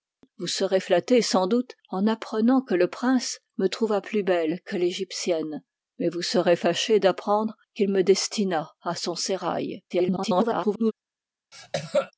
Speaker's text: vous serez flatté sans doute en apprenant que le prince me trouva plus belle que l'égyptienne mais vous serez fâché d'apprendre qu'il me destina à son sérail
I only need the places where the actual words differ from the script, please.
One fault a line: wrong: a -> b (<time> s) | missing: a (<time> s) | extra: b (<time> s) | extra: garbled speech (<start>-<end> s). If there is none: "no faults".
extra: garbled speech (9.9-10.9 s)